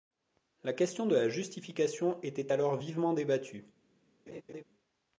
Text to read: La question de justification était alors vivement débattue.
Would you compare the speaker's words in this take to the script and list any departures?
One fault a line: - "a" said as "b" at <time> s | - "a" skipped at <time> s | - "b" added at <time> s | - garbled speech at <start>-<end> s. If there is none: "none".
- "la" added at 1.1 s